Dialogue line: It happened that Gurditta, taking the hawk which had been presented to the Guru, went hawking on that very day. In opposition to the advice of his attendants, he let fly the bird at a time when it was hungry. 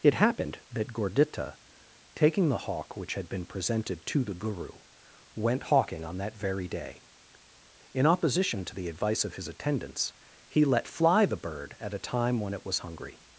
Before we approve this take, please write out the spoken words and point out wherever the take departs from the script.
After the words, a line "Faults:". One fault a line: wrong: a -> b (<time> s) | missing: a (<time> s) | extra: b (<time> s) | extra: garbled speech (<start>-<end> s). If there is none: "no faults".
It happened that Gurditta, taking the hawk which had been presented to the Guru, went hawking on that very day. In opposition to the advice of his attendants, he let fly the bird at a time when it was hungry.
Faults:
no faults